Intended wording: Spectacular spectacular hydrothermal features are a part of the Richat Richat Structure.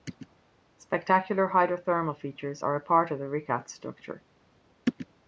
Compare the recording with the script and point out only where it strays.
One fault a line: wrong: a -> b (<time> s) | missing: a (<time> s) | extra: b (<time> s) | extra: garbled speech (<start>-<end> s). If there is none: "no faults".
missing: spectacular (1.5 s)
missing: Richat (3.7 s)